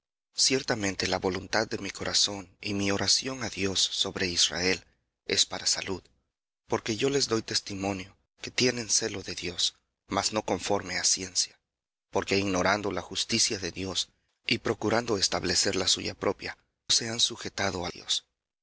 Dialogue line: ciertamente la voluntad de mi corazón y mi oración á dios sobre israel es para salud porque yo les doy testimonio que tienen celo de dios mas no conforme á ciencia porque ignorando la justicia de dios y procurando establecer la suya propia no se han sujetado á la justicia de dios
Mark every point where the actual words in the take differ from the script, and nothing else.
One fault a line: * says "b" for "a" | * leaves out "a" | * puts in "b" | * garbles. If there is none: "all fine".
* leaves out "no"
* leaves out "la justicia de"